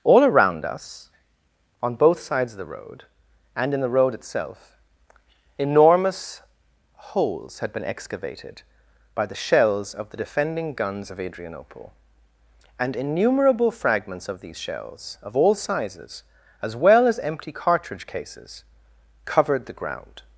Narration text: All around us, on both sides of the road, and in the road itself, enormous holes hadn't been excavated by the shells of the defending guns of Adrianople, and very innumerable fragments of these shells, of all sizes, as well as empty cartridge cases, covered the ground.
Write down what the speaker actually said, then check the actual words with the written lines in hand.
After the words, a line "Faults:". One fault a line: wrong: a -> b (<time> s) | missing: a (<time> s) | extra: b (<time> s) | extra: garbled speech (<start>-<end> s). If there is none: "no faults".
All around us, on both sides of the road, and in the road itself, enormous holes had been excavated by the shells of the defending guns of Adrianople, and innumerable fragments of these shells, of all sizes, as well as empty cartridge cases, covered the ground.
Faults:
wrong: hadn't -> had (7.6 s)
missing: very (12.9 s)